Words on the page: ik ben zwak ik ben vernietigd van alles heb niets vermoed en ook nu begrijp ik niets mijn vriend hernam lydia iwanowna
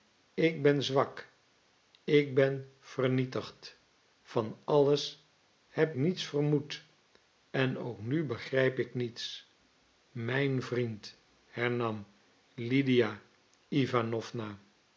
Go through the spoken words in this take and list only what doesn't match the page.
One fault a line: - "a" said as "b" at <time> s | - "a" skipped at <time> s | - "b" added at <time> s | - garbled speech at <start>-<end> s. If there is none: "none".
none